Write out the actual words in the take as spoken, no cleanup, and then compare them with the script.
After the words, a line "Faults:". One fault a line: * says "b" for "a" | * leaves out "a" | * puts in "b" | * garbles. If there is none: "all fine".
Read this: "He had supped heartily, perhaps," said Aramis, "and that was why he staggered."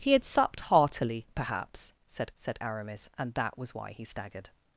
"He had supped heartily, perhaps," said said Aramis, "and that was why he staggered."
Faults:
* puts in "said"